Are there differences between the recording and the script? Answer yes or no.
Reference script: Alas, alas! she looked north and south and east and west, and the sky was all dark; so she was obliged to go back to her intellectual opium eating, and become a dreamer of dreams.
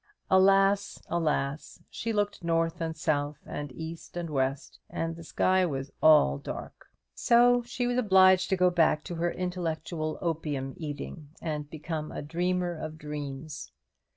no